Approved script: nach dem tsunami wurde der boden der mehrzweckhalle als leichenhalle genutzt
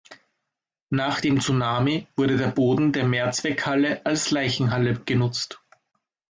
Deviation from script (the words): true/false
false